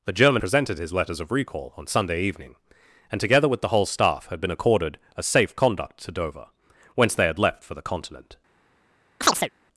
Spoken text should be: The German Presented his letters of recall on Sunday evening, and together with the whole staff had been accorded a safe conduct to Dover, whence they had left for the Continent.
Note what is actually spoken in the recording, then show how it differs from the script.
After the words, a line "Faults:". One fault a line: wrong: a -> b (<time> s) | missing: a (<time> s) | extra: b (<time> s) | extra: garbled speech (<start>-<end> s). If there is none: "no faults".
The German Presented his letters of recall on Sunday evening, and together with the whole staff had been accorded a safe conduct to Dover, whence they had left for the Continent.
Faults:
no faults